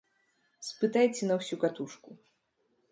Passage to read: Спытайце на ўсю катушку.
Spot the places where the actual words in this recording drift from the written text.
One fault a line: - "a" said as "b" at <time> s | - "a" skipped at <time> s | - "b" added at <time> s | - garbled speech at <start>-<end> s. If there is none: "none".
none